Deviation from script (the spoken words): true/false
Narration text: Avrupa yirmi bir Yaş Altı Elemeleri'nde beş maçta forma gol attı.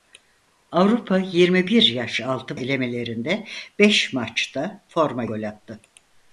false